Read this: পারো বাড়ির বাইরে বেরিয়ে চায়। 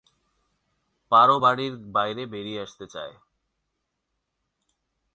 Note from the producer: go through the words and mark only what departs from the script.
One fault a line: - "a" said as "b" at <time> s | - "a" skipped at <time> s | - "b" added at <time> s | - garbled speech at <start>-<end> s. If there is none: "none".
- "আসতে" added at 2.6 s